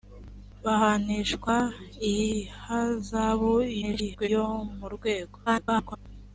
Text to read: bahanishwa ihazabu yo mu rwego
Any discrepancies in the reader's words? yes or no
yes